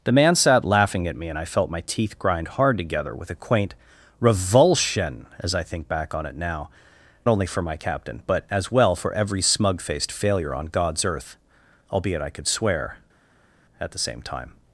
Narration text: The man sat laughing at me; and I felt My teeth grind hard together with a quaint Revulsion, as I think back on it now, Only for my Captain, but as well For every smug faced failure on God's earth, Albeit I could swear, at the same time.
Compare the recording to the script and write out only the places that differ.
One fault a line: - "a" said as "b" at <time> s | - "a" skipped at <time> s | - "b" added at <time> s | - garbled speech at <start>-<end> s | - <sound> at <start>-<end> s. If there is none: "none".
none